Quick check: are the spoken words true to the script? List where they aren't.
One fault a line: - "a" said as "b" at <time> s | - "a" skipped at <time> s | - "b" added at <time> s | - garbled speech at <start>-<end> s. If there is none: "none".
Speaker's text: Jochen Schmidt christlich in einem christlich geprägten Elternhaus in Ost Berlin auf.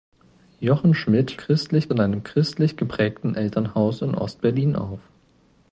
none